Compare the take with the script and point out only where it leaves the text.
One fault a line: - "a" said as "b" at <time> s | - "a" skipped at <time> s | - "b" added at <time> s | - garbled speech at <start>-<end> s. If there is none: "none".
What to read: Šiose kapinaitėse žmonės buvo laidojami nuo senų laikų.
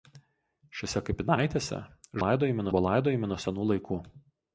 - "žmonės" said as "laidojami" at 2.2 s